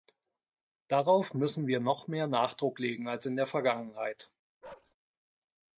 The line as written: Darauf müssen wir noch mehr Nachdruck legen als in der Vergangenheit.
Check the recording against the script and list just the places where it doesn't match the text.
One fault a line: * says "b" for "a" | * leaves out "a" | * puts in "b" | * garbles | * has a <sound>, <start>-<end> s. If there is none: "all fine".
* has a bark, 4.6-5.0 s